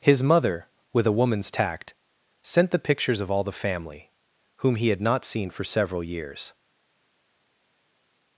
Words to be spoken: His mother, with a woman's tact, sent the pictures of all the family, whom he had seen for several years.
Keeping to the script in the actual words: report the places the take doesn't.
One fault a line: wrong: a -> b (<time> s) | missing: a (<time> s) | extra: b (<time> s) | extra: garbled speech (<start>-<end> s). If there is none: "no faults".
extra: not (5.0 s)